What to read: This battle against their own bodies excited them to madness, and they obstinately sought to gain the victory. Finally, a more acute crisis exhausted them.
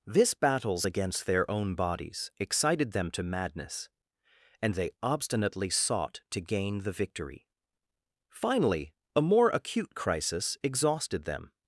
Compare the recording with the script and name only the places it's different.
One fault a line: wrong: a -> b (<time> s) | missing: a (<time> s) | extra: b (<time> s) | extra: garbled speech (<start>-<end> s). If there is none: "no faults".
wrong: battle -> battles (0.3 s)